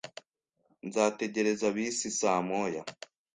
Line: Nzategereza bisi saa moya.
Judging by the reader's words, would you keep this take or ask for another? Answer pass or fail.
pass